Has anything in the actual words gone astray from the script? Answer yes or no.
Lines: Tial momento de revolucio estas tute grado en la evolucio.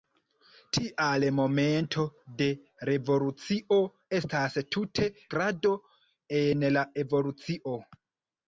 no